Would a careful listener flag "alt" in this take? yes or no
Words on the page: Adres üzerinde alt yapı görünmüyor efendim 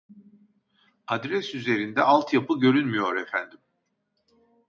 no